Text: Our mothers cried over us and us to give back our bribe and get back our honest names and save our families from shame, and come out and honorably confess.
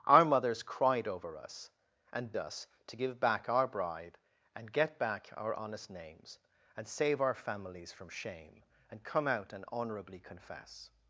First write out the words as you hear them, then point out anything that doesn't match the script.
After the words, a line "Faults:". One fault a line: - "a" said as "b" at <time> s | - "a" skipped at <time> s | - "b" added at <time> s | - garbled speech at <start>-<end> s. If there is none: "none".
Our mothers cried over us and us to give back our bribe and get back our honest names and save our families from shame, and come out and honorably confess.
Faults:
none